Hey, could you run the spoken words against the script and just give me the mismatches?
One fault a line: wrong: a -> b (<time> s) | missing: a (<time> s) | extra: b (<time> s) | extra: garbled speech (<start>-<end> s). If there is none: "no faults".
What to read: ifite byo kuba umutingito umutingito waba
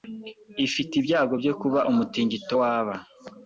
extra: ibyago (1.0 s)
missing: umutingito (2.5 s)